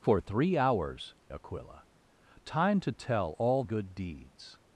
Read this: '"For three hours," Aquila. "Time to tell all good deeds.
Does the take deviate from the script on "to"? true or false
false